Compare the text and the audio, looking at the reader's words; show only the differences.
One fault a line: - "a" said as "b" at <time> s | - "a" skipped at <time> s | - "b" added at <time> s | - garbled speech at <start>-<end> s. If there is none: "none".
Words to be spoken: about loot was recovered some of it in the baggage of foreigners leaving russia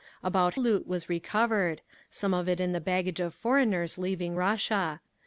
none